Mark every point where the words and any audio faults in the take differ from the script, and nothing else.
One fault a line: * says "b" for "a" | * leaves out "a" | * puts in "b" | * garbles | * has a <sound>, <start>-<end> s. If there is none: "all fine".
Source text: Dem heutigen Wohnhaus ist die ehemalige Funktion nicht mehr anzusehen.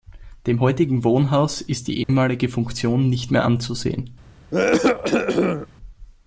* has a dropout, 2.0-2.1 s
* has a cough, 4.5-5.7 s